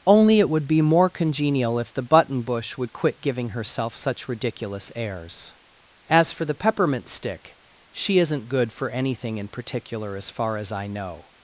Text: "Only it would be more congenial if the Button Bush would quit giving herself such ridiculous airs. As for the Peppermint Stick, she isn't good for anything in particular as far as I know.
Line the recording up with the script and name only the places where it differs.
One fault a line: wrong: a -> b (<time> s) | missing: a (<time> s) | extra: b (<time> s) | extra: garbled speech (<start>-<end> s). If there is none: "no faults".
no faults